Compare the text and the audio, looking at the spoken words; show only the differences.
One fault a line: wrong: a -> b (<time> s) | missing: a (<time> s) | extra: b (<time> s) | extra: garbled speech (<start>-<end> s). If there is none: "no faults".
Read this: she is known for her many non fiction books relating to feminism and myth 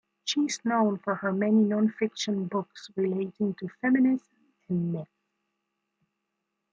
no faults